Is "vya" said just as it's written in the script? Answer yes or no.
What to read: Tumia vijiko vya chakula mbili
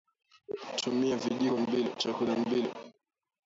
no